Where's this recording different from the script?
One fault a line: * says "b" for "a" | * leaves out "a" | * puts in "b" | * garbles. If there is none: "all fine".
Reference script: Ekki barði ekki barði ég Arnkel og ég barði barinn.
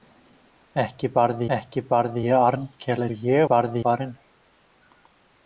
all fine